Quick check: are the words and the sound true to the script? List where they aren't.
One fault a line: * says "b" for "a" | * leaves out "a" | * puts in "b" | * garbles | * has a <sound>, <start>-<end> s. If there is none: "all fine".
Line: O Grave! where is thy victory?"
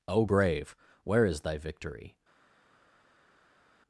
all fine